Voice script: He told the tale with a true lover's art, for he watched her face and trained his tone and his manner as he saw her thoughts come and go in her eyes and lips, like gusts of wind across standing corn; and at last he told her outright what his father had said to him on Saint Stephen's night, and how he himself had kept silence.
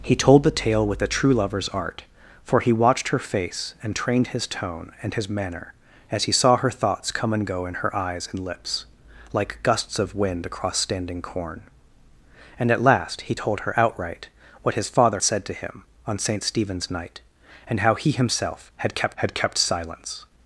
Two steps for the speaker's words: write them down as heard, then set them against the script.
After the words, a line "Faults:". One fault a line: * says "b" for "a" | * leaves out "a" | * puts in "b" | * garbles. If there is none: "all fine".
He told the tale with a true lover's art, for he watched her face and trained his tone and his manner as he saw her thoughts come and go in her eyes and lips, like gusts of wind across standing corn; and at last he told her outright what his father said to him on Saint Stephen's night, and how he himself had kept had kept silence.
Faults:
* leaves out "had"
* puts in "had kept"